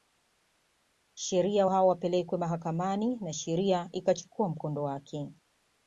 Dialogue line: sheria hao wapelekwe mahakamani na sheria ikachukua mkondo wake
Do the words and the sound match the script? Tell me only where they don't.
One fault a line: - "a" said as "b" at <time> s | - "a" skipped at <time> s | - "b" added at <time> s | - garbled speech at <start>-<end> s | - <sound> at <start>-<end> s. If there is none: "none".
none